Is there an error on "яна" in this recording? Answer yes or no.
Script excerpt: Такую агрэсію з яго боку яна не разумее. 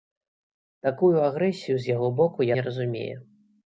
yes